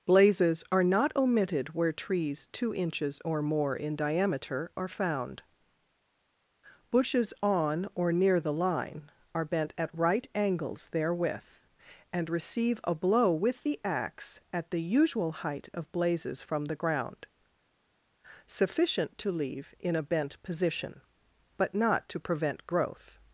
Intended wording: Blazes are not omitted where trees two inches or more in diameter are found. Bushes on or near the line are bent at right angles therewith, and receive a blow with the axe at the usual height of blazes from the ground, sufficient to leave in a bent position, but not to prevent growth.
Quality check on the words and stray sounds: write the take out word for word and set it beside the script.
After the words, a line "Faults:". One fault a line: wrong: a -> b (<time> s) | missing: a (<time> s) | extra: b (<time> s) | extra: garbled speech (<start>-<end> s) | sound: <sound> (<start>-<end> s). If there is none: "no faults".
Blazes are not omitted where trees two inches or more in diameter are found. Bushes on or near the line are bent at right angles therewith, and receive a blow with the axe at the usual height of blazes from the ground, sufficient to leave in a bent position, but not to prevent growth.
Faults:
no faults